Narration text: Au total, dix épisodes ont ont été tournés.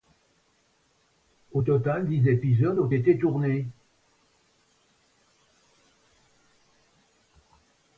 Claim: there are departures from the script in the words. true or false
true